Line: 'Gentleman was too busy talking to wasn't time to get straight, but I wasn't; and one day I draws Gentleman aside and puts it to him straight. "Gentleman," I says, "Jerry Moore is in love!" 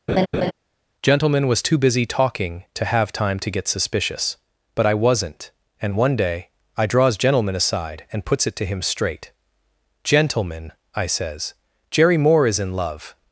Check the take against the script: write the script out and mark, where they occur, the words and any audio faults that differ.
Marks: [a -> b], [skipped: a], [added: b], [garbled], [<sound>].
[laugh] 'Gentleman was too busy talking to [wasn't -> have] time to get [straight, -> suspicious] but I wasn't; and one day I draws Gentleman aside and puts it to him straight. "Gentleman," I says, "Jerry Moore is in love!"